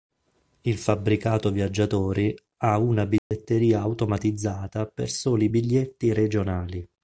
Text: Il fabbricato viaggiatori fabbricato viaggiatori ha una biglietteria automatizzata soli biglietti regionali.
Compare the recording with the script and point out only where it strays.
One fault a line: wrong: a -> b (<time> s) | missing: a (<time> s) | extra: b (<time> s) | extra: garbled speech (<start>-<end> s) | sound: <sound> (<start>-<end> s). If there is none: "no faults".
missing: fabbricato viaggiatori (2.4 s)
sound: dropout (3.2-3.3 s)
extra: per (4.9 s)